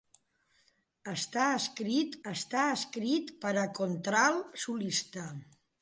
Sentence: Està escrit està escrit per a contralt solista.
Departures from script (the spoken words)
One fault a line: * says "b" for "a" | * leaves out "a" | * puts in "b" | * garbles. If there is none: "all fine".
all fine